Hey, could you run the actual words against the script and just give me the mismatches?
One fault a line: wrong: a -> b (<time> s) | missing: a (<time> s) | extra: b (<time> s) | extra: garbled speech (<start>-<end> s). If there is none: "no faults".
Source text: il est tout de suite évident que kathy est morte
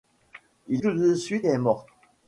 missing: est (0.8 s)
missing: évident que kathy (1.5 s)